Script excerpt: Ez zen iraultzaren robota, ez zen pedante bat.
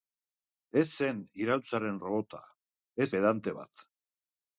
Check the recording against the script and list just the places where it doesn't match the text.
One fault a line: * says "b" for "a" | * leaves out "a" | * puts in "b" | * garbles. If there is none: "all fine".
* leaves out "zen"